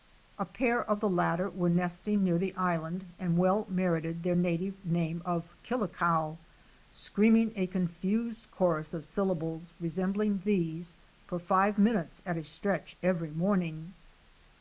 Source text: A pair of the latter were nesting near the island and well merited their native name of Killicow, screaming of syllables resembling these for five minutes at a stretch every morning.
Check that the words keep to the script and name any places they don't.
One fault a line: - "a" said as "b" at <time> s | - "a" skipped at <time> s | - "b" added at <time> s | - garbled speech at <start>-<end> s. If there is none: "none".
- "a confused chorus" added at 7.6 s